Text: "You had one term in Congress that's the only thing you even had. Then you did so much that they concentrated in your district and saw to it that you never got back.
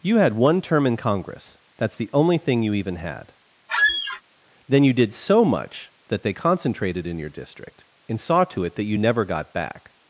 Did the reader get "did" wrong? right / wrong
right